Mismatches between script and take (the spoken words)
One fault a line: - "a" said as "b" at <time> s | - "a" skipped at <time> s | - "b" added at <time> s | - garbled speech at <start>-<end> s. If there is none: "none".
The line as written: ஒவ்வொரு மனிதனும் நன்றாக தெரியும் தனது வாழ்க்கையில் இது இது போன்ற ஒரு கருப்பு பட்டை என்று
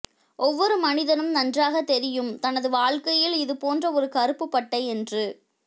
- "இது" skipped at 3.6 s